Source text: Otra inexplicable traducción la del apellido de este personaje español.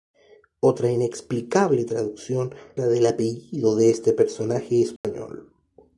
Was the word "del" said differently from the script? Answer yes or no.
no